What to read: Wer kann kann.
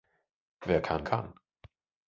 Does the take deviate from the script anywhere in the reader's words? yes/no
no